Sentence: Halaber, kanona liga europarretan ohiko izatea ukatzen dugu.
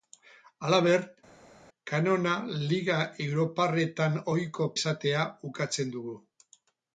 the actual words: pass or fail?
pass